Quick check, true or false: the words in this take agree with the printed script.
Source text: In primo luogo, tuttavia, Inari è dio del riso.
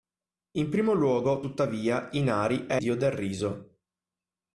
true